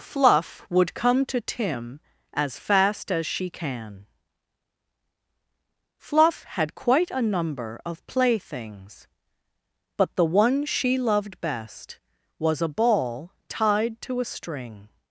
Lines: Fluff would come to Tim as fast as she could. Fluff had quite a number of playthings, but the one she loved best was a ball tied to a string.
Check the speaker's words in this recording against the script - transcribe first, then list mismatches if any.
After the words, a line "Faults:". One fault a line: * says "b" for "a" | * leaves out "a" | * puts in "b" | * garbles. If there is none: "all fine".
Fluff would come to Tim as fast as she can. Fluff had quite a number of playthings, but the one she loved best was a ball tied to a string.
Faults:
* says "can" for "could"